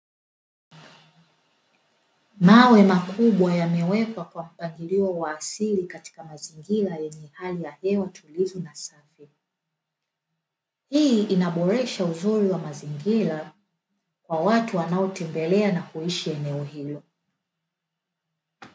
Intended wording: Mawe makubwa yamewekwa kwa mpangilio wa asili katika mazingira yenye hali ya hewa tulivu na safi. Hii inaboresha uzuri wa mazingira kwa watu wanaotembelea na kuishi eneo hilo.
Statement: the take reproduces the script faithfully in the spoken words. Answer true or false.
true